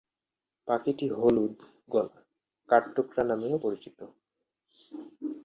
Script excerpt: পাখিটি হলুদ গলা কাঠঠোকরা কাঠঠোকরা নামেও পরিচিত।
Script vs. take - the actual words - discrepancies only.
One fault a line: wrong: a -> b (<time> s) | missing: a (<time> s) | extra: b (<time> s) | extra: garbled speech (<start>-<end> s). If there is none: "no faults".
missing: কাঠঠোকরা (3.2 s)